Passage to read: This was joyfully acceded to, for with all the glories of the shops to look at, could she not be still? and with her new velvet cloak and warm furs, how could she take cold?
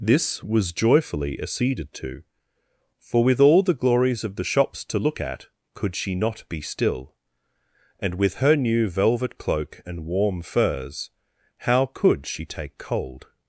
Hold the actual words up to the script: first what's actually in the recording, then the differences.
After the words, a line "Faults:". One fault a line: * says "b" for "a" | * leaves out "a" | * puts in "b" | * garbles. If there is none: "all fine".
This was joyfully acceded to, for with all the glories of the shops to look at, could she not be still? and with her new velvet cloak and warm furs, how could she take cold?
Faults:
all fine